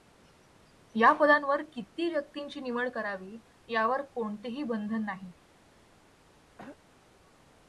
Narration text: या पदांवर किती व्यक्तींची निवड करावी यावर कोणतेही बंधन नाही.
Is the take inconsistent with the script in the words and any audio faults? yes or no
yes